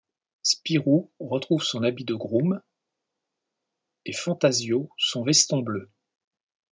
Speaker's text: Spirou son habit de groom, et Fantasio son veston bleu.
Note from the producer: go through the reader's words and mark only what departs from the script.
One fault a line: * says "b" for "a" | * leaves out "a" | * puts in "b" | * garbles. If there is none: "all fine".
* puts in "retrouve"